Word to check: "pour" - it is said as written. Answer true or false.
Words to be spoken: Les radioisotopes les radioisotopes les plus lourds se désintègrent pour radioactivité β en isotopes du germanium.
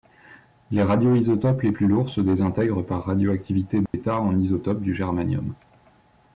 false